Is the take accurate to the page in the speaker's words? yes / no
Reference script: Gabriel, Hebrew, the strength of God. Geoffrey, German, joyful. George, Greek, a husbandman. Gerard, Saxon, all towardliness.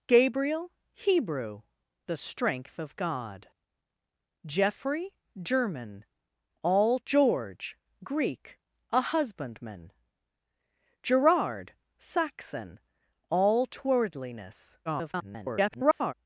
no